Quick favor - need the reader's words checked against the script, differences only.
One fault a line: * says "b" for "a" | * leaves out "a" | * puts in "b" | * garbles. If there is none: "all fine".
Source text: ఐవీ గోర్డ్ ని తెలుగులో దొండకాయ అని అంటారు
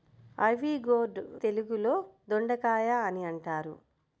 * leaves out "ని"